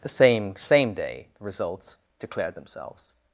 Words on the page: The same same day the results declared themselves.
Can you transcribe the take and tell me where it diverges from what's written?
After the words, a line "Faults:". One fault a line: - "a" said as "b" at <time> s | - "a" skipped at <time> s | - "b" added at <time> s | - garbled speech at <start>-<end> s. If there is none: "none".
The same same day the results declared themselves.
Faults:
none